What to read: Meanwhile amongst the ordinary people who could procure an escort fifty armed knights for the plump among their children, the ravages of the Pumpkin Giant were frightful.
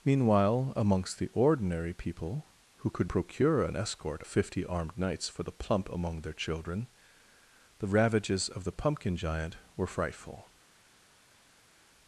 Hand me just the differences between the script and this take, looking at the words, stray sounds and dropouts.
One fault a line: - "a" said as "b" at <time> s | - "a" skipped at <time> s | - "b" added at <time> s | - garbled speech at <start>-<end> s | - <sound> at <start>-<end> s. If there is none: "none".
none